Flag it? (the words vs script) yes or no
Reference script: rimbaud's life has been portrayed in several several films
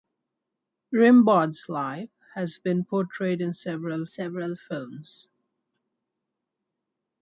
no